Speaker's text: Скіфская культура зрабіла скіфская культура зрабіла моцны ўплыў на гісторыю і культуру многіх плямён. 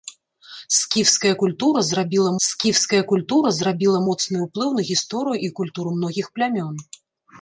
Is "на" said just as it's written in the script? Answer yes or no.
yes